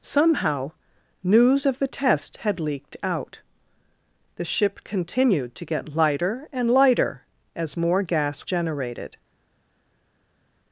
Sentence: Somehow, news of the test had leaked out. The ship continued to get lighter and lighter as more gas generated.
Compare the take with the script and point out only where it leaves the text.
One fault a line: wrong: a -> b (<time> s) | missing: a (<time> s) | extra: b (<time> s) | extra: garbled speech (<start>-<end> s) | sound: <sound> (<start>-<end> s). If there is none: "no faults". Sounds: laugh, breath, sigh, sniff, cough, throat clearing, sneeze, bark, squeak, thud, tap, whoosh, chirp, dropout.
no faults